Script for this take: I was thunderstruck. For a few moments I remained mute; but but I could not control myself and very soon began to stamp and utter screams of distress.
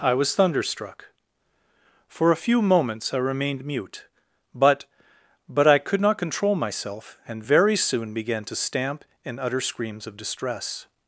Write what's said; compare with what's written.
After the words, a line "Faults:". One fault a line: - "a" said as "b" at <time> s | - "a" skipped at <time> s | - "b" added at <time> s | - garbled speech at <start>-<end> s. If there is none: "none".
I was thunderstruck. For a few moments I remained mute; but but I could not control myself and very soon began to stamp and utter screams of distress.
Faults:
none